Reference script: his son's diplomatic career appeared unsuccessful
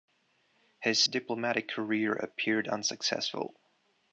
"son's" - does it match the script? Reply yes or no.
no